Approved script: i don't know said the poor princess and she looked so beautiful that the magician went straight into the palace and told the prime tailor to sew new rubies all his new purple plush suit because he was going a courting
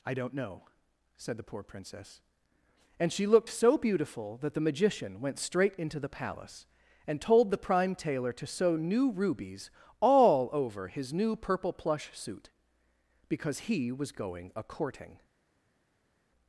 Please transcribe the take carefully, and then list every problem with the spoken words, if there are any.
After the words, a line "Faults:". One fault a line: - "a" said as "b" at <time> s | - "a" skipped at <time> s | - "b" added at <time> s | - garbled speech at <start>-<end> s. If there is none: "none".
i don't know said the poor princess and she looked so beautiful that the magician went straight into the palace and told the prime tailor to sew new rubies all over his new purple plush suit because he was going a courting
Faults:
- "over" added at 10.5 s